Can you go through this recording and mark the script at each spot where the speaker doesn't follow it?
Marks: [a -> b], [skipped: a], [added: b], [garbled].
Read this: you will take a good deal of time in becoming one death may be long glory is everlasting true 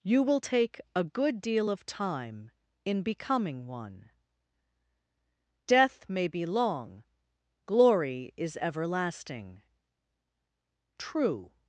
you will take a good deal of time in becoming one death may be long glory is everlasting true